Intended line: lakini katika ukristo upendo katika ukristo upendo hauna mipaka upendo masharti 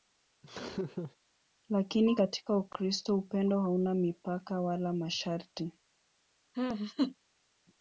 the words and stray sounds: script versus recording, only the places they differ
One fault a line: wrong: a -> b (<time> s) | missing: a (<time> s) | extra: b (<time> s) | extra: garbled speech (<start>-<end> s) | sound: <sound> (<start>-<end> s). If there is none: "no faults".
sound: laugh (0.4-1.2 s)
missing: katika ukristo upendo (3.6 s)
wrong: upendo -> wala (4.6 s)
sound: laugh (6.5-7.2 s)